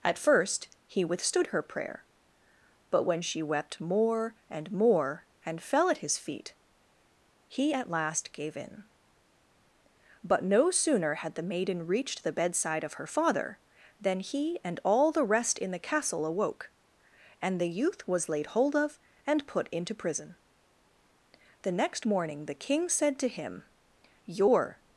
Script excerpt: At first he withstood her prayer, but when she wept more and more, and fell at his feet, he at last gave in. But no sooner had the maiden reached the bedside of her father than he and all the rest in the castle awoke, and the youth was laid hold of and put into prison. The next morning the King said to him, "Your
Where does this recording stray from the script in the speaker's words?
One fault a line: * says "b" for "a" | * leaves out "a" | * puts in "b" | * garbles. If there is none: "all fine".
all fine